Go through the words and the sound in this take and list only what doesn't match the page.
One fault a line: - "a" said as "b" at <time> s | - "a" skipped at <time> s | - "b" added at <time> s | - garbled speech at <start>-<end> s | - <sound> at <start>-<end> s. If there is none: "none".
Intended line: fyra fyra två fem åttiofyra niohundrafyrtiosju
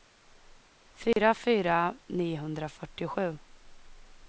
- dropout at 1.1-1.2 s
- "två fem åttiofyra" skipped at 1.9 s